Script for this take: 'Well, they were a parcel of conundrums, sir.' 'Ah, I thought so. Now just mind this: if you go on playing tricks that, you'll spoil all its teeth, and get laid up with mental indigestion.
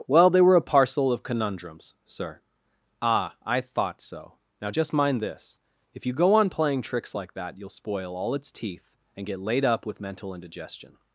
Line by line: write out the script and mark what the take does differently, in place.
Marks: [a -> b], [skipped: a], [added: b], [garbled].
'Well, they were a parcel of conundrums, sir.' 'Ah, I thought so. Now just mind this: if you go on playing tricks [added: like] that, you'll spoil all its teeth, and get laid up with mental indigestion.